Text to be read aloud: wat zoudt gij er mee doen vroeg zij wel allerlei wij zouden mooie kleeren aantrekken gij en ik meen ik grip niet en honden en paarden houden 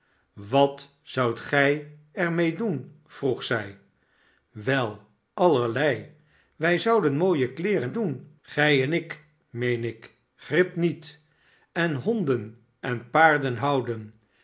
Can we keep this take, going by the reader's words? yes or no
no